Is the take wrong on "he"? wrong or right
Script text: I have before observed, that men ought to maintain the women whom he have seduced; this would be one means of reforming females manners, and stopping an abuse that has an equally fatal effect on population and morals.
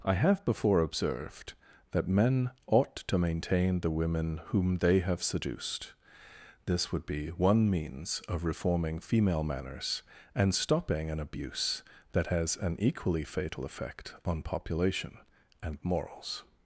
wrong